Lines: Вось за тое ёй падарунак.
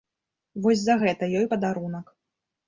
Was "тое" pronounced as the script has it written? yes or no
no